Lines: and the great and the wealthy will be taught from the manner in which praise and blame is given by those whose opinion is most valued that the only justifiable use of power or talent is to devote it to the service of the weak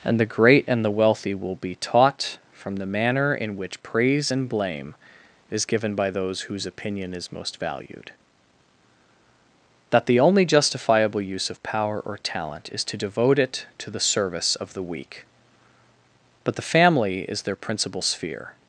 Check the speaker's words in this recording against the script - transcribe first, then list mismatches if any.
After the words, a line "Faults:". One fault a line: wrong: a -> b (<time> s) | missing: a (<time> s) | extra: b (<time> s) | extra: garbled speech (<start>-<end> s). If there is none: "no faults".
and the great and the wealthy will be taught from the manner in which praise and blame is given by those whose opinion is most valued that the only justifiable use of power or talent is to devote it to the service of the weak but the family is their principal sphere
Faults:
extra: but the family is their principal sphere (16.4 s)